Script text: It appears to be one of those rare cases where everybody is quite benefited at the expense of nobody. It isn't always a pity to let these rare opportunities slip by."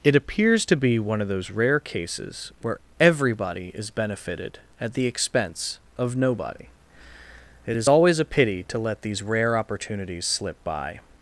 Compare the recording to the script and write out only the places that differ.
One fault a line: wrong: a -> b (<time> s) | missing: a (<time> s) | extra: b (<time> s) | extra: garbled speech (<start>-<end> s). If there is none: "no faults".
missing: quite (3.9 s)
wrong: isn't -> is (7.8 s)